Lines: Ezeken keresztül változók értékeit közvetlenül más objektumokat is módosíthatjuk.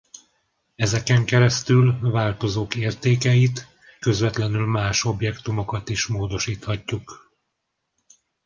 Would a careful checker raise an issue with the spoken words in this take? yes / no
no